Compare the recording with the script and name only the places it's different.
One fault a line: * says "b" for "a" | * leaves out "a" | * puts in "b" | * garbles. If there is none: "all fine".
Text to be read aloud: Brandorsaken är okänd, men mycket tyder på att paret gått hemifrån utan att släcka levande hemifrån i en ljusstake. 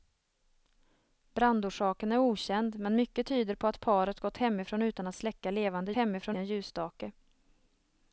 all fine